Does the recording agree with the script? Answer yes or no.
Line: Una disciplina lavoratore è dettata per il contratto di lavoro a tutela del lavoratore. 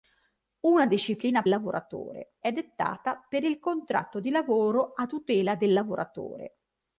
yes